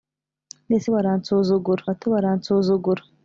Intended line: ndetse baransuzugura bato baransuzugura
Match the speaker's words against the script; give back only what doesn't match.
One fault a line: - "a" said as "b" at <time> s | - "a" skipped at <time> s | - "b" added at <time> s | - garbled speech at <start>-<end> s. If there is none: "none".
none